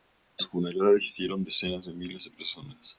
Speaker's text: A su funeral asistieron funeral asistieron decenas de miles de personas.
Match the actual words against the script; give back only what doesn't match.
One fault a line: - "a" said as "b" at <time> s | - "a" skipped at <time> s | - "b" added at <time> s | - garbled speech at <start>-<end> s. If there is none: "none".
- "funeral asistieron" skipped at 1.4 s